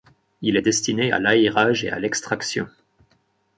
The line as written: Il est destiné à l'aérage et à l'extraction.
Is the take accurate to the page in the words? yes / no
yes